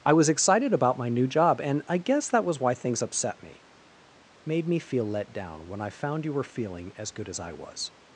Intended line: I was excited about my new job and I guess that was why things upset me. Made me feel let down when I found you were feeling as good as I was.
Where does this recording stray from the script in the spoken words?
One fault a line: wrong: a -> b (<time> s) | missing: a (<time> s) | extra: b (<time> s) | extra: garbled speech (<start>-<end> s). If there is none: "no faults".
no faults